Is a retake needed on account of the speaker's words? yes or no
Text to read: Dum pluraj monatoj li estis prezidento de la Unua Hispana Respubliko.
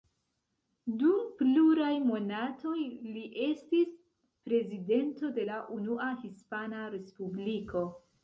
no